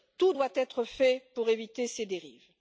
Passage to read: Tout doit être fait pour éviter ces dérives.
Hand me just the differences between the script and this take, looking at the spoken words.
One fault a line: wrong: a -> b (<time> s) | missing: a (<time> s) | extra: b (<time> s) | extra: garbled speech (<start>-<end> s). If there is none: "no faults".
no faults